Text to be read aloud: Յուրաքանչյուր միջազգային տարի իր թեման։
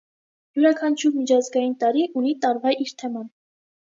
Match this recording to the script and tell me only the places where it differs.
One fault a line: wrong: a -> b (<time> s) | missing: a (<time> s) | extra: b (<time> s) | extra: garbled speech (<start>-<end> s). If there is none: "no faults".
extra: ունի տարվա (2.2 s)